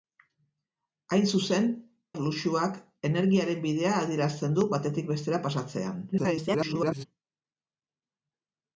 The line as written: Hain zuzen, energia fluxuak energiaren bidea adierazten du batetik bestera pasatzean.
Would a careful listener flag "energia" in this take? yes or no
yes